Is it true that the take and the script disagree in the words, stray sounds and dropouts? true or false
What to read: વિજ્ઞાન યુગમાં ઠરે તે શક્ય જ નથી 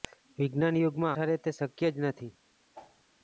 true